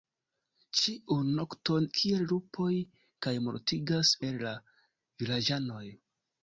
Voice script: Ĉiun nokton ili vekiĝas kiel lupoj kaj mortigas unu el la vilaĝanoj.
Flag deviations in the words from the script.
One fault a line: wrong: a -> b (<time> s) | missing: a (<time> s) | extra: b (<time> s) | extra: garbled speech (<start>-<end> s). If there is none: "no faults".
missing: ili vekiĝas (1.9 s)
missing: unu (4.2 s)